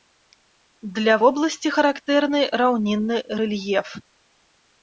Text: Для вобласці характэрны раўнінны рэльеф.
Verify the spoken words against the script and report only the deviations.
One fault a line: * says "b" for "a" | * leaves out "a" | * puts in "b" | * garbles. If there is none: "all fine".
all fine